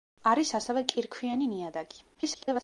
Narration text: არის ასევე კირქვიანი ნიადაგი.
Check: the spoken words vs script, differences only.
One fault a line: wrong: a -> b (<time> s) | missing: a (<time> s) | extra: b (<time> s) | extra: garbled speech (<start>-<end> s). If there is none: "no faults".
extra: garbled speech (2.1-2.6 s)